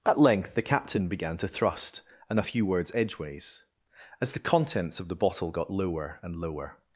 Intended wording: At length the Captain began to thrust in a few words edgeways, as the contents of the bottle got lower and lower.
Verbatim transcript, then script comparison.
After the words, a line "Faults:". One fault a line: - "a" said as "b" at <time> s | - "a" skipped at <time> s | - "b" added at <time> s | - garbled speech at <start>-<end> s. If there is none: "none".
At length the Captain began to thrust and a few words edgeways, as the contents of the bottle got lower and lower.
Faults:
- "in" said as "and" at 2.3 s